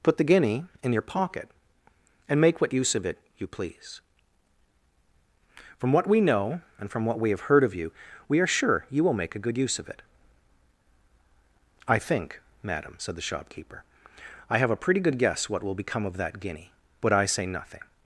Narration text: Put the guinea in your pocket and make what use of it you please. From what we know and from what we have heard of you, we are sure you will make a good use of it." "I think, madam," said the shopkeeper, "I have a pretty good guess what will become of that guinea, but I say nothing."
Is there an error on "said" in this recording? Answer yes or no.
no